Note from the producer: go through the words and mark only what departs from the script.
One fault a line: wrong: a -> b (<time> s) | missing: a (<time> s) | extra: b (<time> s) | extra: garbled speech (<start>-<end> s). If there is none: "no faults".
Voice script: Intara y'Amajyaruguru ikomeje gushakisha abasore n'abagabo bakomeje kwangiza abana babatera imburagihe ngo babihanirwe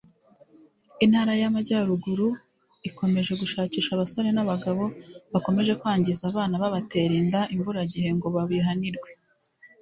extra: inda (7.2 s)